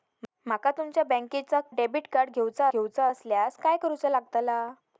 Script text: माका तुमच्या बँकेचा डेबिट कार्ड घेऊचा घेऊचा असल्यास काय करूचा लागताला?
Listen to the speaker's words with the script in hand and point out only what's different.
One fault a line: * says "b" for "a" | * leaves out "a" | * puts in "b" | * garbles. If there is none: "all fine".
all fine